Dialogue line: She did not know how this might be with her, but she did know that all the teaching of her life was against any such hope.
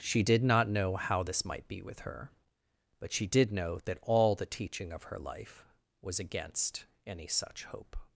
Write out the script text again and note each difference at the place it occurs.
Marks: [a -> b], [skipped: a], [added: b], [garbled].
She did not know how this might be with her, but she did know that all the teaching of her life was against any such hope.